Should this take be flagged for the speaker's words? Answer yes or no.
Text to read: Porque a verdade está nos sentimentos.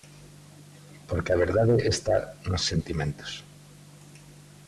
no